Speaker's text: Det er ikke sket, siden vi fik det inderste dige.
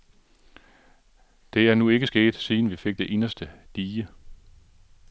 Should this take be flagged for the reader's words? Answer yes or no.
yes